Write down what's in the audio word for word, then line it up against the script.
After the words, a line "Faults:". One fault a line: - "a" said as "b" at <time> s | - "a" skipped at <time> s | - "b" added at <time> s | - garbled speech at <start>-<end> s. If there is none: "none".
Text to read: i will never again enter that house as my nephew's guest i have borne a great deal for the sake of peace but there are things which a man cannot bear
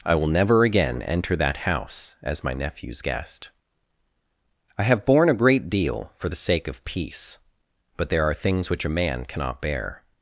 i will never again enter that house as my nephew's guest i have borne a great deal for the sake of peace but there are things which a man cannot bear
Faults:
none